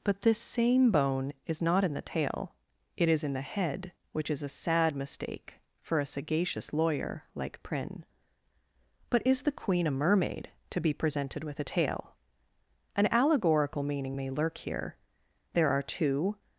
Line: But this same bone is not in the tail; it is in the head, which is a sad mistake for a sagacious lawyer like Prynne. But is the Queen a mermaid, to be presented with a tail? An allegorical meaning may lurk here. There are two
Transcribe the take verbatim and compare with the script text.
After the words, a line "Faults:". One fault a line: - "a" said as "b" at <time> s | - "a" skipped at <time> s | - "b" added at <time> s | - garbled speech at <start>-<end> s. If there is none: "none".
But this same bone is not in the tail; it is in the head, which is a sad mistake for a sagacious lawyer like Prynne. But is the Queen a mermaid, to be presented with a tail? An allegorical meaning may lurk here. There are two
Faults:
none